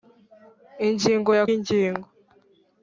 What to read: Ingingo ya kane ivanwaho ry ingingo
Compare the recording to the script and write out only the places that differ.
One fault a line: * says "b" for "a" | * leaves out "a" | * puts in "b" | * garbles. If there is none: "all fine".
* leaves out "kane ivanwaho ry"